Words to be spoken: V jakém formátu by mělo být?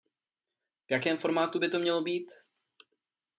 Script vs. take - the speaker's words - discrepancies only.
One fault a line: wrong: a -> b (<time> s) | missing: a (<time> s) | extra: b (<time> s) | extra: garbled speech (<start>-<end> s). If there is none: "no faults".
extra: to (1.7 s)